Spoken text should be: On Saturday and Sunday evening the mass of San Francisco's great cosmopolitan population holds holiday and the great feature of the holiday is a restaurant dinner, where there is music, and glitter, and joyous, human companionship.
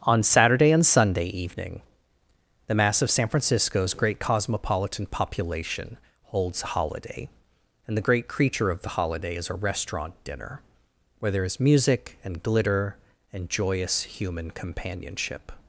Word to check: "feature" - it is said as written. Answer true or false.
false